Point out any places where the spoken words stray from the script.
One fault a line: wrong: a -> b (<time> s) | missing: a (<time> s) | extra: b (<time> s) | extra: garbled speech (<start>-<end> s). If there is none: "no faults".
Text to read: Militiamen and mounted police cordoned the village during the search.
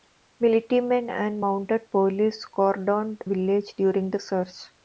missing: the (3.2 s)